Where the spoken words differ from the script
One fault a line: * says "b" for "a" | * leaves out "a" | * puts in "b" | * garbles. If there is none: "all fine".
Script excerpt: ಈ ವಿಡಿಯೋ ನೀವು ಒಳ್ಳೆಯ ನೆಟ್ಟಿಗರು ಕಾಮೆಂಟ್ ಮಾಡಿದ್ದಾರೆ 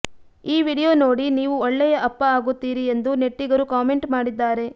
* puts in "ನೋಡಿ"
* puts in "ಅಪ್ಪ ಆಗುತ್ತೀರಿ ಎಂದು"